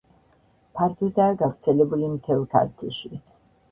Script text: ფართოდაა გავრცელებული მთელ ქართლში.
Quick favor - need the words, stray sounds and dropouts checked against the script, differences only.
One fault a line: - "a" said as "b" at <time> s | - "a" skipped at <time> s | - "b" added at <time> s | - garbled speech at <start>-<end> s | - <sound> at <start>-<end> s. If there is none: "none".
none